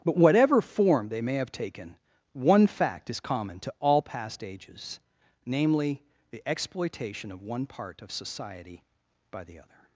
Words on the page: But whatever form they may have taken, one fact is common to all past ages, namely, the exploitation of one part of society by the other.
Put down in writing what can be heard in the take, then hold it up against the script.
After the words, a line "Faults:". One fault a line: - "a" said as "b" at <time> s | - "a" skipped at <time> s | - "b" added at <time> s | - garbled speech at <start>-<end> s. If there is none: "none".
But whatever form they may have taken, one fact is common to all past ages, namely, the exploitation of one part of society by the other.
Faults:
none